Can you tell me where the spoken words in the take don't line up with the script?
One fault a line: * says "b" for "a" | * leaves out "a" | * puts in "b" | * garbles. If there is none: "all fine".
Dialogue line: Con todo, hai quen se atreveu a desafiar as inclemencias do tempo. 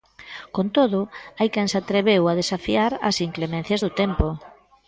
all fine